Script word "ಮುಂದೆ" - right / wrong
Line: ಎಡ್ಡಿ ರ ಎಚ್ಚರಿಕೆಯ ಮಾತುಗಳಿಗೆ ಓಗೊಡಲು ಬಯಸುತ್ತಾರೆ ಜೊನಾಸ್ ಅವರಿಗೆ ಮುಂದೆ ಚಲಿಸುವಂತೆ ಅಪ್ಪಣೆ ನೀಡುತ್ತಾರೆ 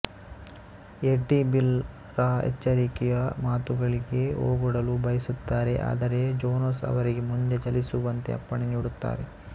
right